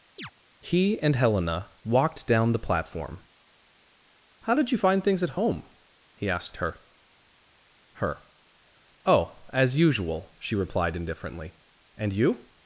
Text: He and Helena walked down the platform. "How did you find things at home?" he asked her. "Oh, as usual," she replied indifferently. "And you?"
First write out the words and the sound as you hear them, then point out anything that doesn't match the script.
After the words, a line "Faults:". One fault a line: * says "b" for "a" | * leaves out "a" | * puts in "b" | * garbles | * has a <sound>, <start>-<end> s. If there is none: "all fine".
He and Helena walked down the platform. "How did you find things at home?" he asked her her. "Oh, as usual," she replied indifferently. "And you?"
Faults:
* has a chirp, 0.2-0.3 s
* puts in "her"